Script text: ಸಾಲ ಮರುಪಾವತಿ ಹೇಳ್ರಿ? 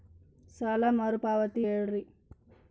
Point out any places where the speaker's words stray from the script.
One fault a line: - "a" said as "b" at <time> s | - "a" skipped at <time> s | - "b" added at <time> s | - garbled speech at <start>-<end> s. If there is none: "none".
none